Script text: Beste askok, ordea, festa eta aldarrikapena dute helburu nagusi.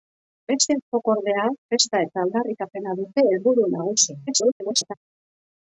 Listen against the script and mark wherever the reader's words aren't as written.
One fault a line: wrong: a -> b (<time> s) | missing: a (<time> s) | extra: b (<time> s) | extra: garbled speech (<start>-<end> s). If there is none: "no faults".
extra: garbled speech (4.3-4.9 s)